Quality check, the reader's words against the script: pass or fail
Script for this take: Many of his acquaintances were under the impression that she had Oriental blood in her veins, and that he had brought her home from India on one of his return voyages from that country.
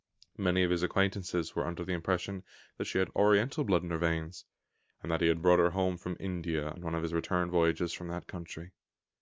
pass